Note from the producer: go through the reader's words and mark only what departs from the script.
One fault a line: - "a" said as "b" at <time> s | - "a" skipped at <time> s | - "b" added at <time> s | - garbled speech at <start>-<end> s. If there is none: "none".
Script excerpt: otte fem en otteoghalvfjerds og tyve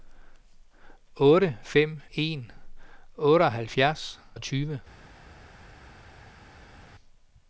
none